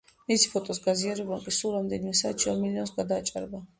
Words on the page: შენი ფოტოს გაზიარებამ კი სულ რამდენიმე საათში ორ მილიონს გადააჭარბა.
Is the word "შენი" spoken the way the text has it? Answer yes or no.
no